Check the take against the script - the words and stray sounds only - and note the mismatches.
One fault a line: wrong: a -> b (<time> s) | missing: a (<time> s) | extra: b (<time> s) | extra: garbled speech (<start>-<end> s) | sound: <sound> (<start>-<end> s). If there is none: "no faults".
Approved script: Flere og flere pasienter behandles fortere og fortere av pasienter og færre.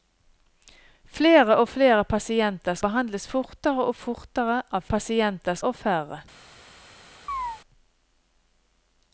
sound: chirp (7.3-7.6 s)